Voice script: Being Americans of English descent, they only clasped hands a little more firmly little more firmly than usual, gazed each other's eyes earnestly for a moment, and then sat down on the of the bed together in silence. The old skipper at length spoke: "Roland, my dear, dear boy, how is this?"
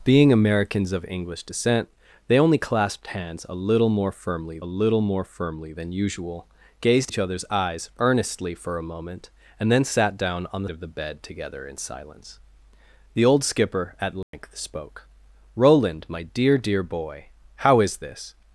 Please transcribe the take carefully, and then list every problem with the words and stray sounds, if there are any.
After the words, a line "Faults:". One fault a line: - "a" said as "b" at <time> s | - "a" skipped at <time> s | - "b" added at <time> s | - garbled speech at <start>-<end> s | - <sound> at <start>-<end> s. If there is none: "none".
Being Americans of English descent, they only clasped hands a little more firmly little more firmly than usual, gazed each other's eyes earnestly for a moment, and then sat down on the of the bed together in silence. The old skipper at length spoke: "Roland, my dear, dear boy, how is this?"
Faults:
- dropout at 14.2-14.3 s